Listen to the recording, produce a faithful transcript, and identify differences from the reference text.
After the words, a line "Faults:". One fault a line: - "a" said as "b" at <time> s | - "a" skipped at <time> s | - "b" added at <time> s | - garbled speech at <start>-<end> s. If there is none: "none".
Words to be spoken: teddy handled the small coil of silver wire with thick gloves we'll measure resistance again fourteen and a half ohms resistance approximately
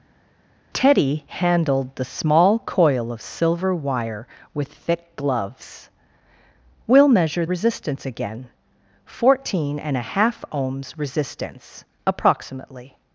teddy handled the small coil of silver wire with thick gloves we'll measure resistance again fourteen and a half ohms resistance approximately
Faults:
none